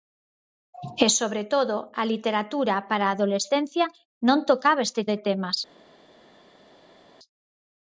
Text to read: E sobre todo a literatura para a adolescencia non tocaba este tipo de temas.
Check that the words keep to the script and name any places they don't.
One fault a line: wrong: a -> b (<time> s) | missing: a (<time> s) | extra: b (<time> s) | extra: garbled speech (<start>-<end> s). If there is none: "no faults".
missing: tipo (5.0 s)